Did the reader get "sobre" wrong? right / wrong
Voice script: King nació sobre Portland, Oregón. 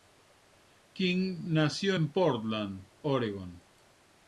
wrong